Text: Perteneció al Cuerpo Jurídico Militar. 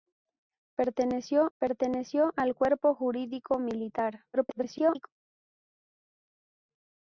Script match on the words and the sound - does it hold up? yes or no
no